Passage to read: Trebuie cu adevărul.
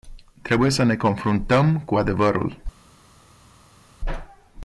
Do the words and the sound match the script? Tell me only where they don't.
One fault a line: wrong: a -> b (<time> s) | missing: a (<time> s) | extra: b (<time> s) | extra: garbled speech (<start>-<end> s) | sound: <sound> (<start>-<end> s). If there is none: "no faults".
extra: să ne confruntăm (0.7 s)